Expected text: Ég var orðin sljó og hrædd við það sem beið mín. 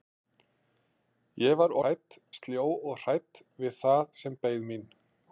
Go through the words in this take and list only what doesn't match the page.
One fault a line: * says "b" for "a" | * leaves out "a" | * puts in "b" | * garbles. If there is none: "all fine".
* says "hrædd" for "orðin"